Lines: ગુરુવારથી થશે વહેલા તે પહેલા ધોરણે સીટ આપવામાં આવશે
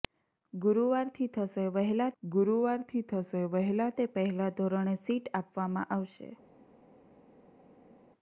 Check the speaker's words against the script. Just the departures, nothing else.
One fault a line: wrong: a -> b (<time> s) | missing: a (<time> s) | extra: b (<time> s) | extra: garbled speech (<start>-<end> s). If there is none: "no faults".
extra: ગુરુવારથી થશે વહેલા (2.2 s)